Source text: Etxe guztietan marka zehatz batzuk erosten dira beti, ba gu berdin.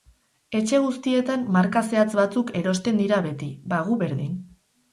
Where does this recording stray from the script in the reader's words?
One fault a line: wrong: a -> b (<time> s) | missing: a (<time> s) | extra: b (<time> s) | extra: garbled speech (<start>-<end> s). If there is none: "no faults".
no faults